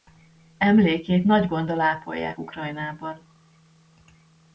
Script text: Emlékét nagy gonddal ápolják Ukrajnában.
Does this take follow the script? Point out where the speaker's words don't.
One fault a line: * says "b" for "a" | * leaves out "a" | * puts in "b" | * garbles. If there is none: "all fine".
all fine